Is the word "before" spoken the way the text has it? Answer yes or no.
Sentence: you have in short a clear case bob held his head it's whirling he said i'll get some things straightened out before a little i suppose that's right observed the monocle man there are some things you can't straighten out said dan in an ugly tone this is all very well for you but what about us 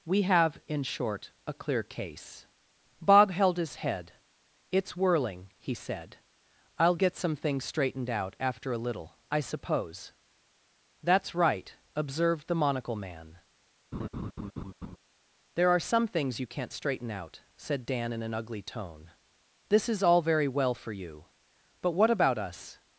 no